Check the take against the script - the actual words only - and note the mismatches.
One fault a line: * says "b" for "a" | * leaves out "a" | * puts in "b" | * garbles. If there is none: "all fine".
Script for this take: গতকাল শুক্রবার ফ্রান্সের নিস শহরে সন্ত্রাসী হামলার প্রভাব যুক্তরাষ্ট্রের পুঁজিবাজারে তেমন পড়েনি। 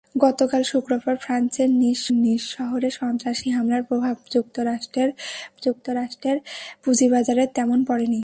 * puts in "নিস"
* puts in "যুক্তরাষ্ট্রের"